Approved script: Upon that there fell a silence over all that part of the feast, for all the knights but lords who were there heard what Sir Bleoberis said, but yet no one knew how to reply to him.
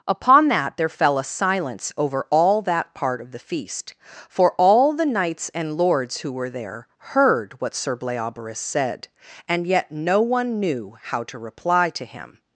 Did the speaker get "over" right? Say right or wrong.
right